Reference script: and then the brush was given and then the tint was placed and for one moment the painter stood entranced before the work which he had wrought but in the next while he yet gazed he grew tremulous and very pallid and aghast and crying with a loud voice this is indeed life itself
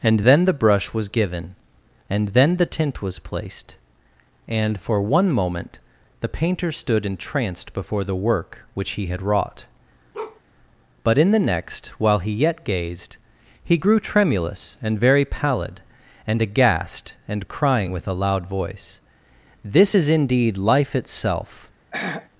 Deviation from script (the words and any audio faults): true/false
true